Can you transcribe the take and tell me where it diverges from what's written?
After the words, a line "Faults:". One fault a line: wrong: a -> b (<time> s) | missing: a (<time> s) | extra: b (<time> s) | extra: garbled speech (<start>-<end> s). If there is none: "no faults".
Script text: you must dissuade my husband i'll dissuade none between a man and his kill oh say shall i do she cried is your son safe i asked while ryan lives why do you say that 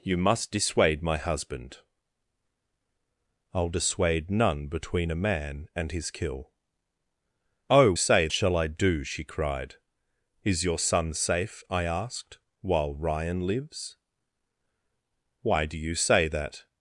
you must dissuade my husband i'll dissuade none between a man and his kill oh say shall i do she cried is your son safe i asked while ryan lives why do you say that
Faults:
no faults